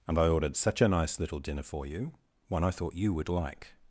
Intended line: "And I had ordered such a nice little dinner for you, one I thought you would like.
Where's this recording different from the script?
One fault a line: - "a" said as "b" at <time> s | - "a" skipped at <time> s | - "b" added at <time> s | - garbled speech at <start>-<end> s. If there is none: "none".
- "had" skipped at 0.3 s